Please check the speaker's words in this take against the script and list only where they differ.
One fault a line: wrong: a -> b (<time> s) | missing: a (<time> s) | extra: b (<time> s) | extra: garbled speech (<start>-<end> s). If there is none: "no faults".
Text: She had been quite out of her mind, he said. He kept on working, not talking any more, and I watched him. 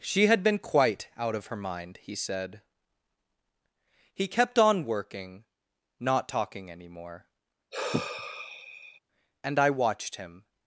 no faults